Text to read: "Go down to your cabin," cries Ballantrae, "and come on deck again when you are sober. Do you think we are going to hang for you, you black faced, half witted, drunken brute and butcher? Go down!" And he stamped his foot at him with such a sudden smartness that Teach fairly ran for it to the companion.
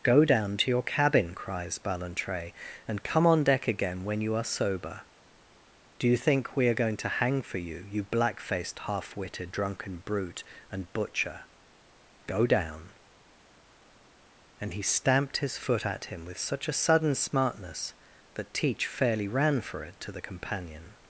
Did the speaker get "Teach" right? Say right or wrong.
right